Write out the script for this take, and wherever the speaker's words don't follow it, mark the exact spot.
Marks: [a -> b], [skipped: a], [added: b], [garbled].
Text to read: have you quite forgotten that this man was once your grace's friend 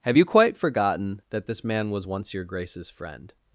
have you quite forgotten that this man was once your grace's friend